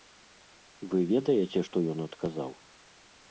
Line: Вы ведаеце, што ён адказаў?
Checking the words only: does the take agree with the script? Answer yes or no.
yes